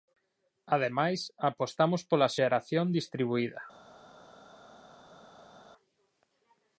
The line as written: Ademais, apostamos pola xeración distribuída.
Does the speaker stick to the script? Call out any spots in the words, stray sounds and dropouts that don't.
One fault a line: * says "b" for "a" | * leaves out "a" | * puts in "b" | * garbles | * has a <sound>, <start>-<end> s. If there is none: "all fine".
all fine